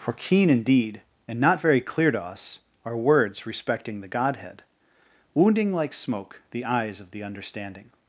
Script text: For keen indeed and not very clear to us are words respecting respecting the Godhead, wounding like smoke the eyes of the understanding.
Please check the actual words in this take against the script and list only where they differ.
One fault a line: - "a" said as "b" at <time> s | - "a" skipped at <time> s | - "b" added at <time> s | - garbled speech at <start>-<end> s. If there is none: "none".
- "respecting" skipped at 4.0 s